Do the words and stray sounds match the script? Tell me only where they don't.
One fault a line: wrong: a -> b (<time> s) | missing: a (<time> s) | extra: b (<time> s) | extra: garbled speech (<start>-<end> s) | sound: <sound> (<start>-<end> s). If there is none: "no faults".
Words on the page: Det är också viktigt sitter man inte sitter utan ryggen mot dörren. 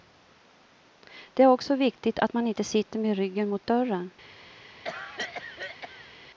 wrong: sitter -> att (2.2 s)
wrong: utan -> med (3.0 s)
sound: cough (4.8-6.1 s)